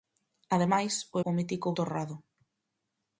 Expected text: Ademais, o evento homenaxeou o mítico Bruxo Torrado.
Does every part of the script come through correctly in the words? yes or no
no